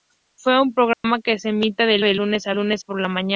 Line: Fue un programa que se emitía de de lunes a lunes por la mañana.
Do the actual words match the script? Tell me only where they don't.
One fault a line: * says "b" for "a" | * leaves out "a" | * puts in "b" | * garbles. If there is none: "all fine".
all fine